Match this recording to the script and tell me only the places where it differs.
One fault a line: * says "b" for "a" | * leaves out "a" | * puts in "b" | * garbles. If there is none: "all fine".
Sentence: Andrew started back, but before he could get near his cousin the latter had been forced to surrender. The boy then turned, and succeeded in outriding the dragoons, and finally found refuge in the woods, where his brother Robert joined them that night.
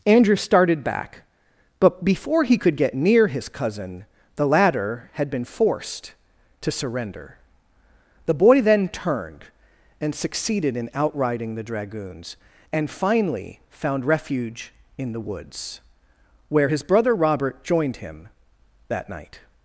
* says "him" for "them"